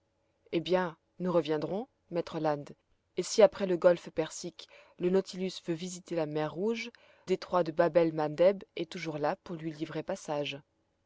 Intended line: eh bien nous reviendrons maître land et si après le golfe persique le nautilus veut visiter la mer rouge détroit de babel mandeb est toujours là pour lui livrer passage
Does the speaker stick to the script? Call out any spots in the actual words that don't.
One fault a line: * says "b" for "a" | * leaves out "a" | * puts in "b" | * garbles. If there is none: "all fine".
all fine